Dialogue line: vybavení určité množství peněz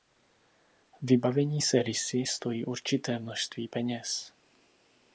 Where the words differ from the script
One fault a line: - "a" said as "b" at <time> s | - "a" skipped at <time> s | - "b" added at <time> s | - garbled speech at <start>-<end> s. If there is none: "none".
- "se rysy stojí" added at 1.6 s